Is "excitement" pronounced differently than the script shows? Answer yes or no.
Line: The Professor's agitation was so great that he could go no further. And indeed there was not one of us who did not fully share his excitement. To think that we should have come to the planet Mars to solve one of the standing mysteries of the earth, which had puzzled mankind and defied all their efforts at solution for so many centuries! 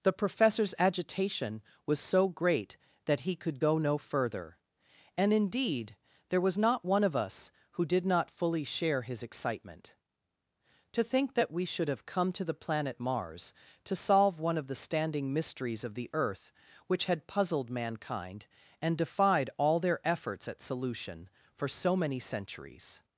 no